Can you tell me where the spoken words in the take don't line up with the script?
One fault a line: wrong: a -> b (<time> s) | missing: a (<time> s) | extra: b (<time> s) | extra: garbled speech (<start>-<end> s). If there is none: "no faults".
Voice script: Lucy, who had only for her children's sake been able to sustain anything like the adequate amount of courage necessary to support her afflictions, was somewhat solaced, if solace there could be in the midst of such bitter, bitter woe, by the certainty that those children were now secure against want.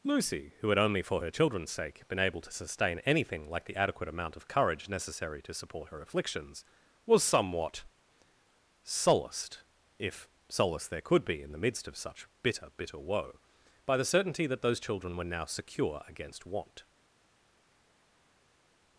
no faults